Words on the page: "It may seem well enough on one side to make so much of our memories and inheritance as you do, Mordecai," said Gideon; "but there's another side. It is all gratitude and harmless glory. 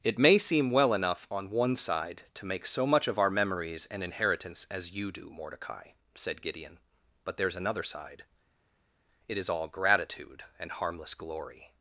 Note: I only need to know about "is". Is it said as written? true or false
true